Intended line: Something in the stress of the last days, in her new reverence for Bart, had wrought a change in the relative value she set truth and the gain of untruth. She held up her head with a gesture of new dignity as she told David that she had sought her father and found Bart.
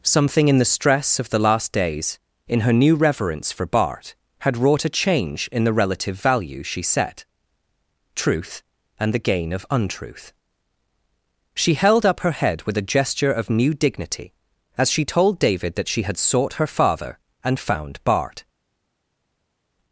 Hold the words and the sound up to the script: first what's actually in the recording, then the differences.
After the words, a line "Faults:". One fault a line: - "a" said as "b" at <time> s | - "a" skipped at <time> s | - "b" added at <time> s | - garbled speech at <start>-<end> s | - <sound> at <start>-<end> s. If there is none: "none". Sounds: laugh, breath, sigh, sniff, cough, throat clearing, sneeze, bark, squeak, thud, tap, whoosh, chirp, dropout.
Something in the stress of the last days, in her new reverence for Bart, had wrought a change in the relative value she set truth and the gain of untruth. She held up her head with a gesture of new dignity as she told David that she had sought her father and found Bart.
Faults:
none